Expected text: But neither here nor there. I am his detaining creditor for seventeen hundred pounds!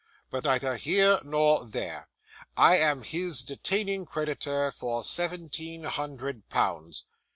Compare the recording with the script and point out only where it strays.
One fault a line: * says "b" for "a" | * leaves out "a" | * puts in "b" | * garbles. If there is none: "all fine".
all fine